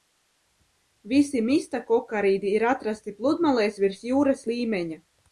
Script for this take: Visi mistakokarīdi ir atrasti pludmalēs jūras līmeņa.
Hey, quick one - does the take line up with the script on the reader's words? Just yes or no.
no